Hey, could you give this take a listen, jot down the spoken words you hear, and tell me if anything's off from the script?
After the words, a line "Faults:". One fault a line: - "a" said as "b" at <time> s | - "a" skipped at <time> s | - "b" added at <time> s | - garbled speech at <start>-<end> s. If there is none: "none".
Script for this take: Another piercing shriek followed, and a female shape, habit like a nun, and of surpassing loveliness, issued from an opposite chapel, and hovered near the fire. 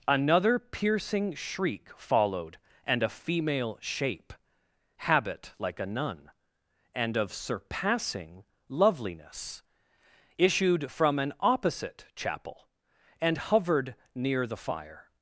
Another piercing shriek followed, and a female shape, habit like a nun, and of surpassing loveliness, issued from an opposite chapel, and hovered near the fire.
Faults:
none